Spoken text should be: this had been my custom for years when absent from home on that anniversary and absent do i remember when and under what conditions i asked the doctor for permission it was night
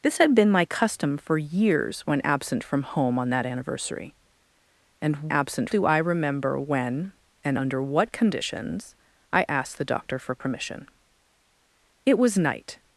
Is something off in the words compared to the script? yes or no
no